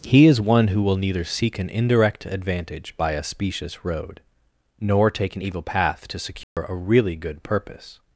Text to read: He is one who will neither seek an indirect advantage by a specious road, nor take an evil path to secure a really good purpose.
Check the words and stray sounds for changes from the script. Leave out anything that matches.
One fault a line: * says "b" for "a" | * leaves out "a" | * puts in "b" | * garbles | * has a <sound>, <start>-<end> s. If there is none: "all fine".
* has a dropout, 6.4-6.6 s